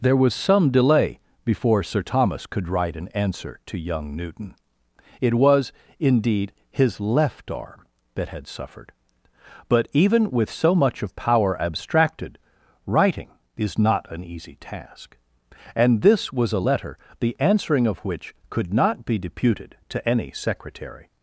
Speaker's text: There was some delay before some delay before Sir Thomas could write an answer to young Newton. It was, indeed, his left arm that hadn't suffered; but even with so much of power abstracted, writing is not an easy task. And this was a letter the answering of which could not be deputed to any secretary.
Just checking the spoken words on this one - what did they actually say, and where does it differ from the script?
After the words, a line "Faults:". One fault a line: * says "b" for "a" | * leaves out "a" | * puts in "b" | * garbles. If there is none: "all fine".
There was some delay before Sir Thomas could write an answer to young Newton. It was, indeed, his left arm that had suffered; but even with so much of power abstracted, writing is not an easy task. And this was a letter the answering of which could not be deputed to any secretary.
Faults:
* leaves out "some delay before"
* says "had" for "hadn't"